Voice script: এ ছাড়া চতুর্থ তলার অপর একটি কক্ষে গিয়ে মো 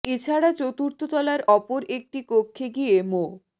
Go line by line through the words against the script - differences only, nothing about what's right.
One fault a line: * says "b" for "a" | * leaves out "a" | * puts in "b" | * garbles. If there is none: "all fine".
all fine